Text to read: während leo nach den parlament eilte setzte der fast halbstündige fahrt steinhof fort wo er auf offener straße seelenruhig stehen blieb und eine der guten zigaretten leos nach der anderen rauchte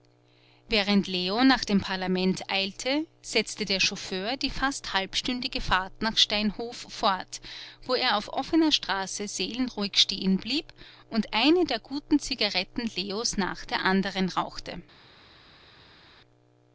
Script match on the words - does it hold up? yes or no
no